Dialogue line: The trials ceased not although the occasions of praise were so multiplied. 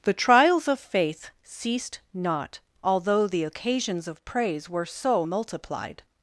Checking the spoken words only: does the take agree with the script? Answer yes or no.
no